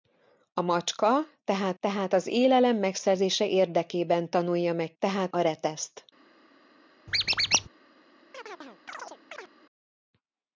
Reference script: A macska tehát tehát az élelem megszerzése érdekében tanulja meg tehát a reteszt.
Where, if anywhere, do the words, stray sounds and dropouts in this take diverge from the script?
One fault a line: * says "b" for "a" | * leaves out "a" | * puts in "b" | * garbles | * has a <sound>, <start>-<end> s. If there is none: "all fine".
* has a squeak, 7.1-7.7 s
* has a chirp, 8.3-9.5 s